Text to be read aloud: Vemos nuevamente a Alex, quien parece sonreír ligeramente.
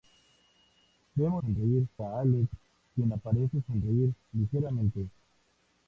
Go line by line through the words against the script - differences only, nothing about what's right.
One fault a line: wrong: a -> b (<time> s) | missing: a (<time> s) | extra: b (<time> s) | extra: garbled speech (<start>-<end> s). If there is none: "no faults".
wrong: nuevamente -> sonreír (1.4 s)